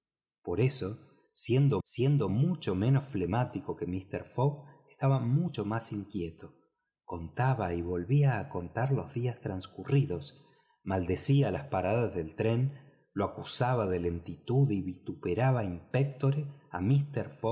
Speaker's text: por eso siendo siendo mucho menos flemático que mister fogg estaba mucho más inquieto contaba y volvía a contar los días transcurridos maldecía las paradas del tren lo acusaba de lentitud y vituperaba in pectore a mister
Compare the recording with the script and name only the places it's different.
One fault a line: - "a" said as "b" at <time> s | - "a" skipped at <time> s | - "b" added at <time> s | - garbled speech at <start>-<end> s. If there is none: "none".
none